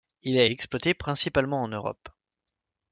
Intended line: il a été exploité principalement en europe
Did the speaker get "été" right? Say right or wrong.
wrong